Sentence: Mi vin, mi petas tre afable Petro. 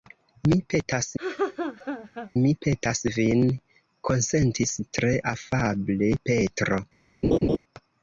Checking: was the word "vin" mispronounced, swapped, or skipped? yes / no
yes